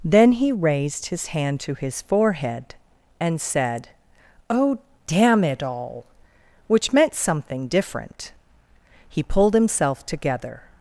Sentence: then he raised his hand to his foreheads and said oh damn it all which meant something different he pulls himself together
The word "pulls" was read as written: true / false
false